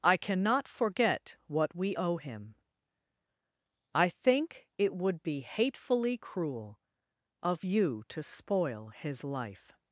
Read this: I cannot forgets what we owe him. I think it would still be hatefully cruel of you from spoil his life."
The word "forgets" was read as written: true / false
false